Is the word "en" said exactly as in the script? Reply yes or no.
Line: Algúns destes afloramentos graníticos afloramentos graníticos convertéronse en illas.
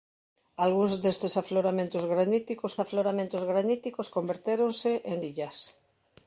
yes